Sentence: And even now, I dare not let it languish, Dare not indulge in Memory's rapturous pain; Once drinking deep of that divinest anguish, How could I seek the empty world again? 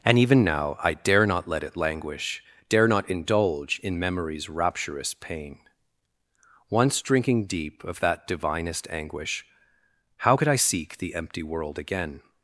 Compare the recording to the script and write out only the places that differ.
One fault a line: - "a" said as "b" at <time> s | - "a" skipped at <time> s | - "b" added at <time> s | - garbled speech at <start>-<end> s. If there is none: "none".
none